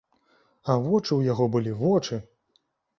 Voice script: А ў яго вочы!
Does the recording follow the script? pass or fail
fail